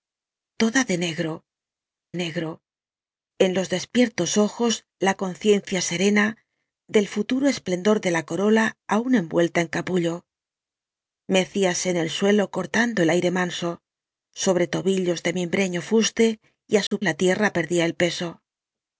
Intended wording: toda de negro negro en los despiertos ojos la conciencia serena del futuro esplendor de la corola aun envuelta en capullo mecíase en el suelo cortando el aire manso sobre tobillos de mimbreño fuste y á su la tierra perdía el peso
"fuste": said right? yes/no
yes